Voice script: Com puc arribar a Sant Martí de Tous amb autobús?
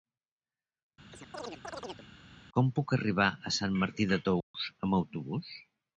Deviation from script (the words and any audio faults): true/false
true